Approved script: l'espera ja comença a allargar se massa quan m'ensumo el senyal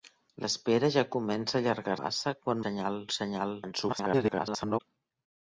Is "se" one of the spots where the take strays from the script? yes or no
yes